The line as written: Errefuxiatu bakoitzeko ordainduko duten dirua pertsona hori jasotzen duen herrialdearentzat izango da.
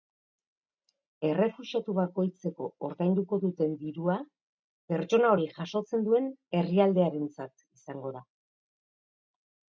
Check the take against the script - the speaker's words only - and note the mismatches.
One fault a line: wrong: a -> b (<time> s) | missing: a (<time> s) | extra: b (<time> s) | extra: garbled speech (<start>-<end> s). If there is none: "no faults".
no faults